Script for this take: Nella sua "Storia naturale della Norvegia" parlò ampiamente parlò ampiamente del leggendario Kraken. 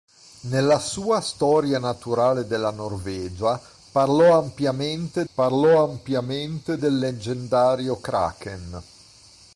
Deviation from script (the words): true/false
false